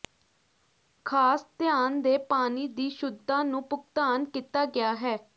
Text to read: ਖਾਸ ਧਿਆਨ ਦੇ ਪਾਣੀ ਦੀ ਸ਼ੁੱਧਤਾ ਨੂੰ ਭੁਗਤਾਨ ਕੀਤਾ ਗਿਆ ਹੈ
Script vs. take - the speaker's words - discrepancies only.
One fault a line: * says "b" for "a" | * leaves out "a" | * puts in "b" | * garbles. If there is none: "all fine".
all fine